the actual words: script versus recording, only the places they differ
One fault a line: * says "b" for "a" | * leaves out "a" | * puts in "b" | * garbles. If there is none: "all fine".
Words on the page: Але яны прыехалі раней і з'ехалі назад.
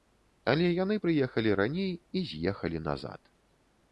all fine